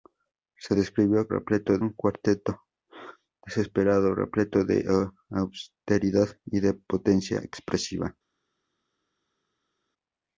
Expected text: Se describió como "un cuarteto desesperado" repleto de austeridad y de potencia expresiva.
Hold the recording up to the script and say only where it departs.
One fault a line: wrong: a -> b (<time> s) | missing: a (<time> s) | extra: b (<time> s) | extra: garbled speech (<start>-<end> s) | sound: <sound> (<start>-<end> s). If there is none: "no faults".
wrong: como -> repleto (1.3 s)